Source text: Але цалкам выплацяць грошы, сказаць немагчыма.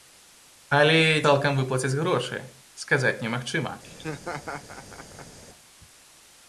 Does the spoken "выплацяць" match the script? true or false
true